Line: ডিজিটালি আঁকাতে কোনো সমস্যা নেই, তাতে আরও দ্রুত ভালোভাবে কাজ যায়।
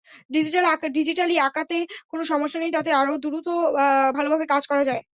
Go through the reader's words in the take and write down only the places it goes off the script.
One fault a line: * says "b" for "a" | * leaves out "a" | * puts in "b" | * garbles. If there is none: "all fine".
* puts in "করা"